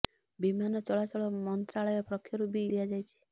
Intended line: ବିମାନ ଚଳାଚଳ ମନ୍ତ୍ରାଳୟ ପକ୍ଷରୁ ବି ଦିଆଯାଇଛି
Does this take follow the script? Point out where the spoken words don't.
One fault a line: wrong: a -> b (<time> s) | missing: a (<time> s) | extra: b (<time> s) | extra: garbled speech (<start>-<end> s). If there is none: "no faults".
no faults